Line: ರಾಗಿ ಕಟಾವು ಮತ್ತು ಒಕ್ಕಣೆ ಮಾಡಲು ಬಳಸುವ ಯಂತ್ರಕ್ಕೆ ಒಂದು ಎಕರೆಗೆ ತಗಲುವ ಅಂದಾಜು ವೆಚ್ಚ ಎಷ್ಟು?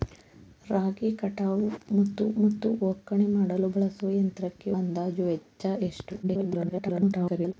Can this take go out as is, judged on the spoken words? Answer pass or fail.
fail